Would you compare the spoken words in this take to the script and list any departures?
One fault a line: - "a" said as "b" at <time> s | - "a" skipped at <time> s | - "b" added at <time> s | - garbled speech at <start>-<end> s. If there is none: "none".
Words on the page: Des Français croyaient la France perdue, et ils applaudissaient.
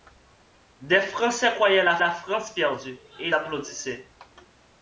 - "la" added at 2.0 s
- "ils" skipped at 3.3 s